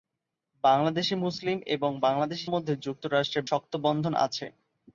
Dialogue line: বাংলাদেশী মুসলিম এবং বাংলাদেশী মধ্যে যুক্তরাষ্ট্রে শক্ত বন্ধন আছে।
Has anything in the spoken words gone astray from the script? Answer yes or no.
no